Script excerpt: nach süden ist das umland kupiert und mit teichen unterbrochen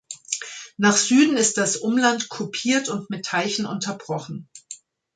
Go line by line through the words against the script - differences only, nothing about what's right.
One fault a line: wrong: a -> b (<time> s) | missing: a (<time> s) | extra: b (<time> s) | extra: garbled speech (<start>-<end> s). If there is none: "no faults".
no faults